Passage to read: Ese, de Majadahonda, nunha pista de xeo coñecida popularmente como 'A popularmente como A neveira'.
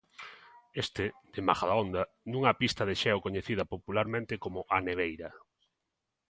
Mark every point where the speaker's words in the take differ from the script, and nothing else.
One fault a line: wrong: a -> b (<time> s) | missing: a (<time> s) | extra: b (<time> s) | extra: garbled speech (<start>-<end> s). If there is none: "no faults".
wrong: Ese -> Este (0.8 s)
missing: popularmente como A (4.8 s)